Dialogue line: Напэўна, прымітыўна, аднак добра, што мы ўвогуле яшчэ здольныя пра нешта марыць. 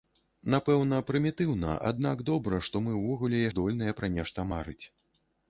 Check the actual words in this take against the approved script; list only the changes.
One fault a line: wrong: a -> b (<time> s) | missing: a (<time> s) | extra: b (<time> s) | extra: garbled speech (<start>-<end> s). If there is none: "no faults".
missing: яшчэ (3.5 s)